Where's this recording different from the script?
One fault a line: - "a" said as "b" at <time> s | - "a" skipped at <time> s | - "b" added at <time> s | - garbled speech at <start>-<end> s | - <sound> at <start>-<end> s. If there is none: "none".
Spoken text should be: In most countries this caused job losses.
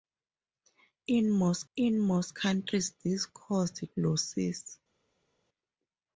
- "in most" added at 1.7 s
- "job" skipped at 3.8 s